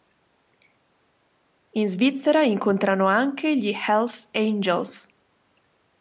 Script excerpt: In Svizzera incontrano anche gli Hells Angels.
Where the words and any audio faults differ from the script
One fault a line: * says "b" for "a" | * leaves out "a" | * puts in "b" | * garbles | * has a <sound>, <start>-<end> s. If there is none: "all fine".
all fine